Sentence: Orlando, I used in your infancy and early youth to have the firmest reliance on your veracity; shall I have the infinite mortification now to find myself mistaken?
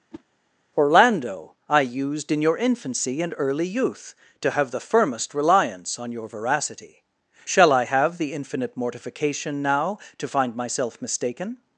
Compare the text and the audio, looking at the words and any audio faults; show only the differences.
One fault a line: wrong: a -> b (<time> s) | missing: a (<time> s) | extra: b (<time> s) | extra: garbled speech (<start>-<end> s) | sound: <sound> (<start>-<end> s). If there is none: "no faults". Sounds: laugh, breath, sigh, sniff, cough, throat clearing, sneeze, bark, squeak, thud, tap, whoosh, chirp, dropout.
sound: whoosh (0.1-0.2 s)